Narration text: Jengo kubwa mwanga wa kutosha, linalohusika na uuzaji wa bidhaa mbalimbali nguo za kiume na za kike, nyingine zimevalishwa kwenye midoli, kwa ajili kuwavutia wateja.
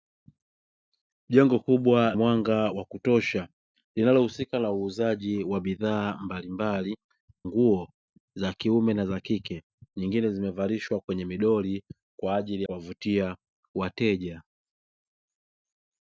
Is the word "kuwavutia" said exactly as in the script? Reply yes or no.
yes